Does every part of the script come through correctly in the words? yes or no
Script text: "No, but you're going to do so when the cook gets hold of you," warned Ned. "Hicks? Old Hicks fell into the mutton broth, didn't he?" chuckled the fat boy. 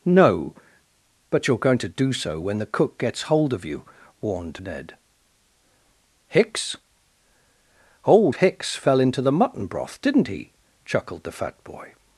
yes